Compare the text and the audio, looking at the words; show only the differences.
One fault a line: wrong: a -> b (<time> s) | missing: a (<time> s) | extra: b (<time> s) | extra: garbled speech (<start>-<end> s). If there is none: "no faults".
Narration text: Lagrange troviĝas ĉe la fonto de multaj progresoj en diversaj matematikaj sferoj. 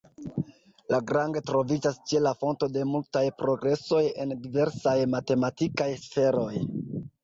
no faults